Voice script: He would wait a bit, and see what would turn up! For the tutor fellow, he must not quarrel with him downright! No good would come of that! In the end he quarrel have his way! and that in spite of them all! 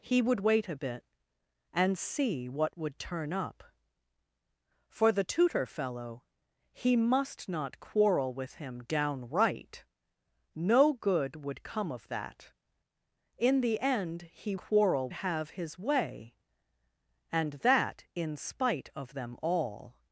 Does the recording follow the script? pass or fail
pass